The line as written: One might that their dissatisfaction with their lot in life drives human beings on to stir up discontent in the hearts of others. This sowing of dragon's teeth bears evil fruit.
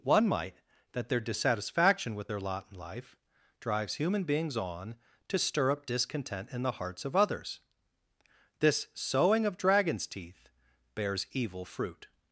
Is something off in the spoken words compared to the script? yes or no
no